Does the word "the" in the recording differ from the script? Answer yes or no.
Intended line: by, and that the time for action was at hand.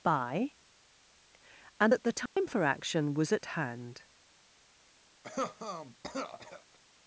no